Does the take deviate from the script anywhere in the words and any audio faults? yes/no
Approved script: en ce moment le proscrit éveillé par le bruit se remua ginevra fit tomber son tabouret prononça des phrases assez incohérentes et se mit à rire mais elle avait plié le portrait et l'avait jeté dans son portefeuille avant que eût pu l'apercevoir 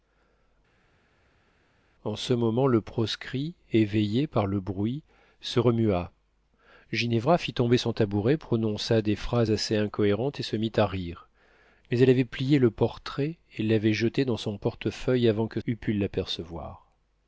no